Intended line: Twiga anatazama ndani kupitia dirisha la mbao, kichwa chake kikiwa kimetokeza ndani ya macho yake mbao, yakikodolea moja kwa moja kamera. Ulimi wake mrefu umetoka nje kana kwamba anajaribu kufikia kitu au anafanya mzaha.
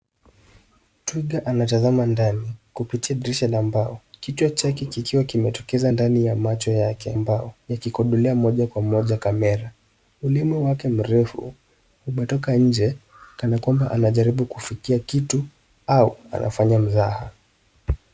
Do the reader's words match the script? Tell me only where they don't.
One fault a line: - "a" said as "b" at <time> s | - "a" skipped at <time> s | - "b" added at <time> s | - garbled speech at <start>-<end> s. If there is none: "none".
none